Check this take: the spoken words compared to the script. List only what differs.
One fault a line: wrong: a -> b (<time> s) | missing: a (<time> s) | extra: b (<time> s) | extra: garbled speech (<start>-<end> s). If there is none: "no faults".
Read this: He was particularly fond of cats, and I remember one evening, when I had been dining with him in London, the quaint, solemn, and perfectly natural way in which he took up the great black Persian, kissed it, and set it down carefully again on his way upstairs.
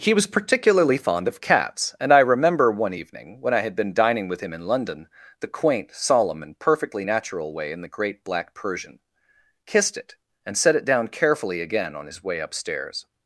missing: which he took up (7.8 s)